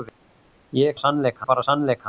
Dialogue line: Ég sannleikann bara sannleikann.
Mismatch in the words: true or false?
false